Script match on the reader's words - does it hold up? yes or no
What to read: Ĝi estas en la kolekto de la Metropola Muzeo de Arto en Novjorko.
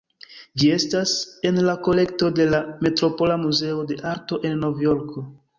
yes